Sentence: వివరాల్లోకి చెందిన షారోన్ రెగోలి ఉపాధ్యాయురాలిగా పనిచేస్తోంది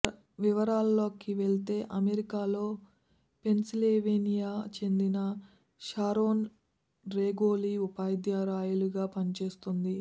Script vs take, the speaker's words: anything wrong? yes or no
yes